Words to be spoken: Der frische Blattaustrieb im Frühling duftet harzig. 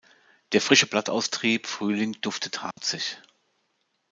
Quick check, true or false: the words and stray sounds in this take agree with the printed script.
false